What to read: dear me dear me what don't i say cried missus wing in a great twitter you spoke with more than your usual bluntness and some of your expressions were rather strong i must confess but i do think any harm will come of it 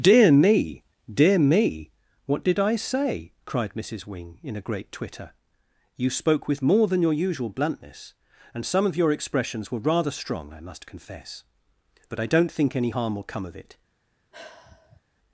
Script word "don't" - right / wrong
wrong